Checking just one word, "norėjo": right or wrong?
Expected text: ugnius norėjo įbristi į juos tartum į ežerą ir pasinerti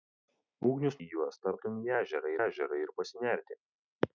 wrong